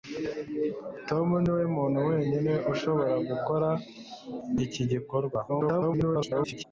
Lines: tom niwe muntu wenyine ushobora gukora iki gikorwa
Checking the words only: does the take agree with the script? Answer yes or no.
no